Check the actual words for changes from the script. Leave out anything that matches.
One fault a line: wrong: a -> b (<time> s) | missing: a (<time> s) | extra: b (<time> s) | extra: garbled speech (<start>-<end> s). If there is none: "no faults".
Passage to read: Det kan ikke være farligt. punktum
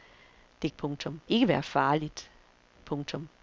wrong: kan -> punktum (0.8 s)